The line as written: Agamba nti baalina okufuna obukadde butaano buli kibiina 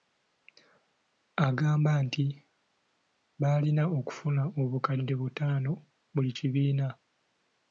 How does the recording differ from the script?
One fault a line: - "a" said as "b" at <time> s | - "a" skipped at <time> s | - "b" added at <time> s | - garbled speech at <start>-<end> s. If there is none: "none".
none